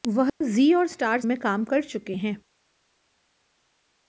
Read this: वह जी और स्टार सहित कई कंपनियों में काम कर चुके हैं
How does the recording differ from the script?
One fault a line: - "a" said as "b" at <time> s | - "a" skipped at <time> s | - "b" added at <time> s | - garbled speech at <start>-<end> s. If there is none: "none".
- "सहित कई कंपनियों" skipped at 1.2 s